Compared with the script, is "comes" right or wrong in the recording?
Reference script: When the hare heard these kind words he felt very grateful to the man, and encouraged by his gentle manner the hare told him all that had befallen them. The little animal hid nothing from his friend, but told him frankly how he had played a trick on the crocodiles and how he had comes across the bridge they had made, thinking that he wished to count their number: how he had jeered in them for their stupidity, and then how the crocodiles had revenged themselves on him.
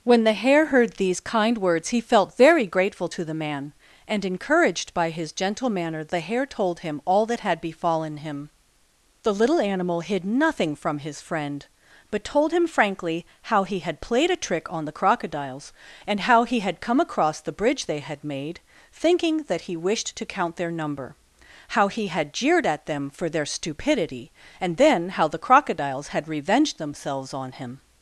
wrong